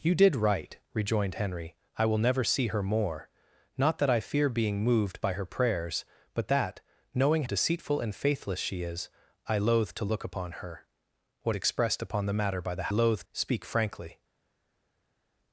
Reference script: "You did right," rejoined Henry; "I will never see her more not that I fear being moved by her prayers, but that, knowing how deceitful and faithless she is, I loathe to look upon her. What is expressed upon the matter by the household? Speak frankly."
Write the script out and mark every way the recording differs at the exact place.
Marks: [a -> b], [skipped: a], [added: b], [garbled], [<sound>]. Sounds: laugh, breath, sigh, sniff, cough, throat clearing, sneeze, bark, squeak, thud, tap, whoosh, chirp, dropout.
"You did right," rejoined Henry; "I will never see her more not that I fear being moved by her prayers, but that, knowing [skipped: how] deceitful and faithless she is, I loathe to look upon her. What [skipped: is] expressed upon the matter by the [household? -> loathe] Speak frankly."